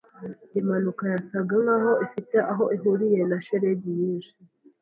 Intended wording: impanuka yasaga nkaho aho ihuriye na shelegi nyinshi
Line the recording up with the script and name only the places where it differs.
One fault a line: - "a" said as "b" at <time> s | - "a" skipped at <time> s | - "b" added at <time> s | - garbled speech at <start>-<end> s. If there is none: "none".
- "ifite" added at 2.1 s